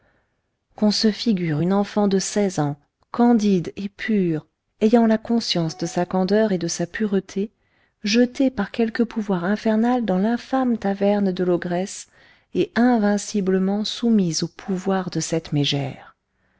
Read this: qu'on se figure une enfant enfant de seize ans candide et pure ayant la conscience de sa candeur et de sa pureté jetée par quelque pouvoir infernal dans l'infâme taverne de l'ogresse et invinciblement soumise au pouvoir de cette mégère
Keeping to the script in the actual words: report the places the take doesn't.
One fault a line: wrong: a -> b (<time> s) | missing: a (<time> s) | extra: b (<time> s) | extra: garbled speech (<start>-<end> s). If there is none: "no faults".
missing: enfant (2.1 s)